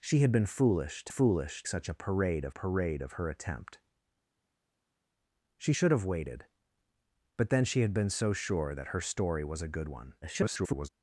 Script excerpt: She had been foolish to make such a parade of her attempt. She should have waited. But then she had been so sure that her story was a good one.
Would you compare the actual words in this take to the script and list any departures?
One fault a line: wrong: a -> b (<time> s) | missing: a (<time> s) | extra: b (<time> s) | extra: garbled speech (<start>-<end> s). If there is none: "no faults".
wrong: make -> foolish (1.1 s)
extra: parade of (2.5 s)
extra: garbled speech (10.2-10.9 s)